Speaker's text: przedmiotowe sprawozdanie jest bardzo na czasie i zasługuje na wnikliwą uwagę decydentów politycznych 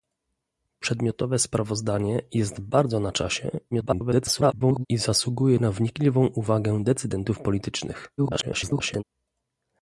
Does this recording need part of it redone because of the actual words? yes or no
yes